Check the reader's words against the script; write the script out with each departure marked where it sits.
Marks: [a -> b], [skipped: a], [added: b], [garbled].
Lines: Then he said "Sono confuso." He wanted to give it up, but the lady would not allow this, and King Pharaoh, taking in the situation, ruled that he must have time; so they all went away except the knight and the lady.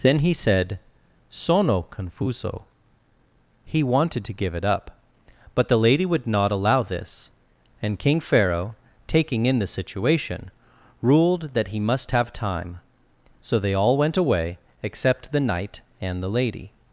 Then he said "Sono confuso." He wanted to give it up, but the lady would not allow this, and King Pharaoh, taking in the situation, ruled that he must have time; so they all went away except the knight and the lady.